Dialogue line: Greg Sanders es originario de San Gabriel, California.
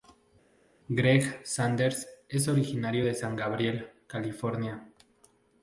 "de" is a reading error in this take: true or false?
false